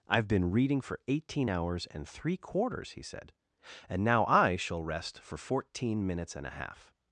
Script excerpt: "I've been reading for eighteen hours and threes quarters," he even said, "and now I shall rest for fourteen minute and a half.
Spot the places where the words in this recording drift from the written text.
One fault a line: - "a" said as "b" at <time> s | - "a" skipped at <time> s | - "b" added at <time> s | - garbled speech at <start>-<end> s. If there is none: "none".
- "threes" said as "three" at 2.1 s
- "even" skipped at 3.0 s
- "minute" said as "minutes" at 6.1 s